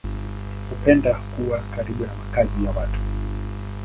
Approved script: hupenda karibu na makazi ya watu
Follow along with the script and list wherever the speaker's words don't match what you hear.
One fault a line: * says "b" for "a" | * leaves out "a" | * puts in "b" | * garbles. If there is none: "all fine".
* puts in "kuwa"